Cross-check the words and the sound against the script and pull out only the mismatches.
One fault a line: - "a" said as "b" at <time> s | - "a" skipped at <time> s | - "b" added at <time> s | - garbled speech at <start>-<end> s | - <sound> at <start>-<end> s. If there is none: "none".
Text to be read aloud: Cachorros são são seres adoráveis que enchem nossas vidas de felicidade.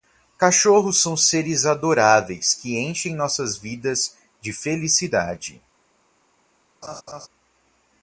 - "são" skipped at 1.1 s
- laugh at 6.8-7.3 s